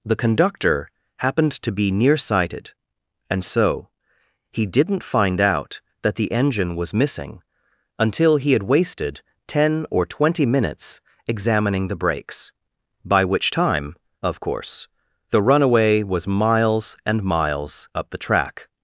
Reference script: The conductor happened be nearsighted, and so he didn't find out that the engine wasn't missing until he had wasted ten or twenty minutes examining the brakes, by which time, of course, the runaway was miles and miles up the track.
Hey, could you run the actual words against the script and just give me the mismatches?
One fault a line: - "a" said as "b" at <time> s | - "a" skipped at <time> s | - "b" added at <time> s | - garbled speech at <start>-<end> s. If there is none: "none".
- "to" added at 1.6 s
- "wasn't" said as "was" at 6.8 s